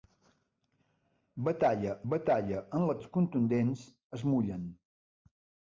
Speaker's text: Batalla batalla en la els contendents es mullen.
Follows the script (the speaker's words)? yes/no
yes